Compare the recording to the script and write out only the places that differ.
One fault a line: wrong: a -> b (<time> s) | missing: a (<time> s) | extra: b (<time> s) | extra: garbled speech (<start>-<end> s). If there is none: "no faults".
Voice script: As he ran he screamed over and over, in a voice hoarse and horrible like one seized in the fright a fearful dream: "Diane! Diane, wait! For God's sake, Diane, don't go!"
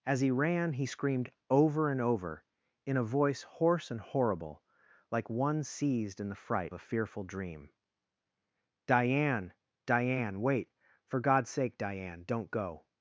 no faults